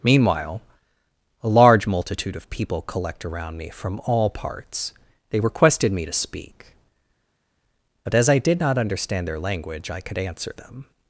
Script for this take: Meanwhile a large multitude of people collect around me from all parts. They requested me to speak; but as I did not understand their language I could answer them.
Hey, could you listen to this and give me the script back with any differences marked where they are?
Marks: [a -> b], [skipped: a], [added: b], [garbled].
Meanwhile a large multitude of people collect around me from all parts. They requested me to speak; but as I did not understand their language I could answer them.